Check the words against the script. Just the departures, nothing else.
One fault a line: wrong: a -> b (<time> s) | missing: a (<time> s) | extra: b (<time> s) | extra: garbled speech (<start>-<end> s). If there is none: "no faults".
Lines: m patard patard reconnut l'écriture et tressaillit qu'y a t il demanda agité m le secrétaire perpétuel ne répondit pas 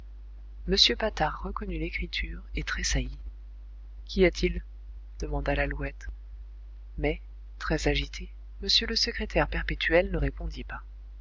missing: patard (1.4 s)
extra: lalouette mais très (5.5 s)